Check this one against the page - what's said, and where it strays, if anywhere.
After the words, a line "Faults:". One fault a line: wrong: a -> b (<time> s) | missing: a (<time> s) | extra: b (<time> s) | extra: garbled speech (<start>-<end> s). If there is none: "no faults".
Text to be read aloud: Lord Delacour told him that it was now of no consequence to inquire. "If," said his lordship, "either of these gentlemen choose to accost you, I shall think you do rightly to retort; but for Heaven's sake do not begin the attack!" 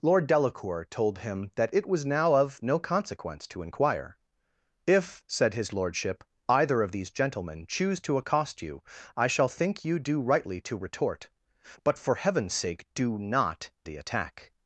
Lord Delacour told him that it was now of no consequence to inquire. "If," said his lordship, "either of these gentlemen choose to accost you, I shall think you do rightly to retort; but for Heaven's sake do not the attack!"
Faults:
missing: begin (13.7 s)